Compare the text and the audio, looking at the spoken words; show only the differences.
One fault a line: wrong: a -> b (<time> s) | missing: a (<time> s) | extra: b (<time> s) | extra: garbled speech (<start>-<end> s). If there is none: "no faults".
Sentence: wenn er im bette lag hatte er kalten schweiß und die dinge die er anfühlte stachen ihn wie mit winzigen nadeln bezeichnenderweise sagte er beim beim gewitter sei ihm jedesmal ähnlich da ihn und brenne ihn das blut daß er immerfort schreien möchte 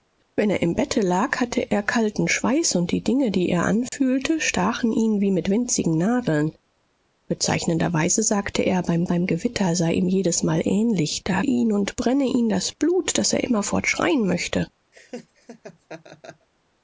no faults